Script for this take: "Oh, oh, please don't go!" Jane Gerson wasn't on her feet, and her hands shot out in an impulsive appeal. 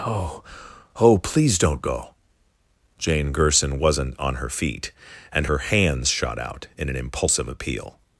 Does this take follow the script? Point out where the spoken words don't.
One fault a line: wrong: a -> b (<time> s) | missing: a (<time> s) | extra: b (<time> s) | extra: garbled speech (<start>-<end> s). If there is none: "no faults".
no faults